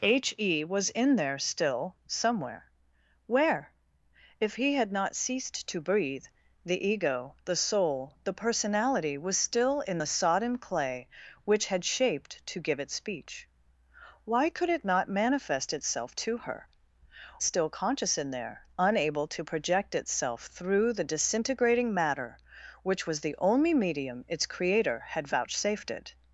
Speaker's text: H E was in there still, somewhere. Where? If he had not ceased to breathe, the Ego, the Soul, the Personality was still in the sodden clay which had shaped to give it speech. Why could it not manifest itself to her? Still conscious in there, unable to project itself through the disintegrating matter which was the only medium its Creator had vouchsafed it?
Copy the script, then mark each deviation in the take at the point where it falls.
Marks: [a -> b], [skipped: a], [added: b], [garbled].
H E was in there still, somewhere. Where? If he had not ceased to breathe, the Ego, the Soul, the Personality was still in the sodden clay which had shaped to give it speech. Why could it not manifest itself to her? Still conscious in there, unable to project itself through the disintegrating matter which was the only medium its Creator had vouchsafed it?